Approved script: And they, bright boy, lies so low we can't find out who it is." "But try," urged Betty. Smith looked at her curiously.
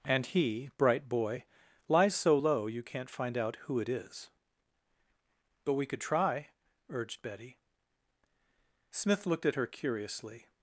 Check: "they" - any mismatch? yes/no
yes